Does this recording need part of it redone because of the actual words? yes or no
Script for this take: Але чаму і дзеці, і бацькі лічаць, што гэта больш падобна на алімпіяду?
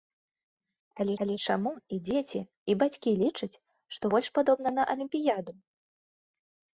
yes